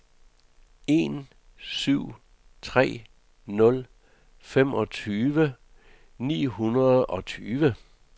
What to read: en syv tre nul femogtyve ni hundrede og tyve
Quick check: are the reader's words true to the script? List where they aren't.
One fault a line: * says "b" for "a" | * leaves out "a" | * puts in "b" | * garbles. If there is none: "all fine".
all fine